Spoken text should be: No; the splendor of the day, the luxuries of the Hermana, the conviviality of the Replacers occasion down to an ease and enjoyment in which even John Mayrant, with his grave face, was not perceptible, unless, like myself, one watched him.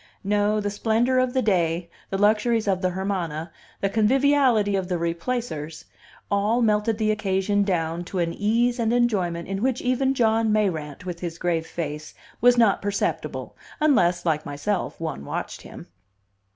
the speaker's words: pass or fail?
fail